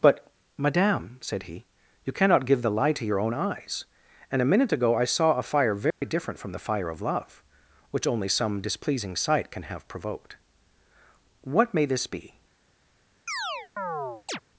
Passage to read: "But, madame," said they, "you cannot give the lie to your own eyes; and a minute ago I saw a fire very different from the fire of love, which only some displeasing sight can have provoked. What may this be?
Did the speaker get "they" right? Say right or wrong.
wrong